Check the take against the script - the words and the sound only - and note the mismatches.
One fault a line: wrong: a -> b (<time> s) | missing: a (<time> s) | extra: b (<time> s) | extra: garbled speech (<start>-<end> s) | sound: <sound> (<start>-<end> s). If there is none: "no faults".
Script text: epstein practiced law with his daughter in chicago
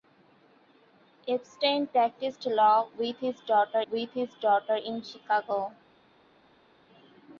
extra: with his daughter (3.9 s)